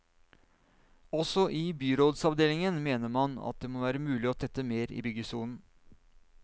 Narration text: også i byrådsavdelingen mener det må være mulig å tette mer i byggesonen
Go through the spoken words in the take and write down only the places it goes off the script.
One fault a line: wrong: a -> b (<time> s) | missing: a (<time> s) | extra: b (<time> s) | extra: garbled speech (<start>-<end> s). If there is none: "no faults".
extra: man at (3.2 s)